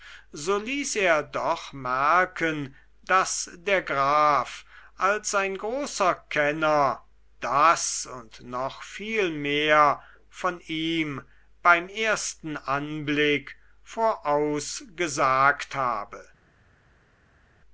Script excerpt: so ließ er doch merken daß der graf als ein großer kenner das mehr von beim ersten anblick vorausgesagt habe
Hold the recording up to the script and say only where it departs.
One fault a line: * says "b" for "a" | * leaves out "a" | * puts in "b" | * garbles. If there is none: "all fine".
* puts in "und noch viel"
* puts in "ihm"